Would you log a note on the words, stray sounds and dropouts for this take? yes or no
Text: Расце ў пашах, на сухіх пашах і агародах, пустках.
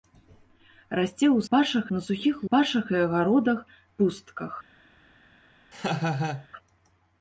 yes